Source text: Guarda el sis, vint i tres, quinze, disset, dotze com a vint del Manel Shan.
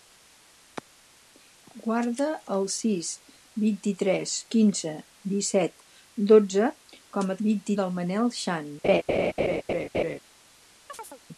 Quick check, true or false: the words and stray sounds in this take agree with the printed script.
false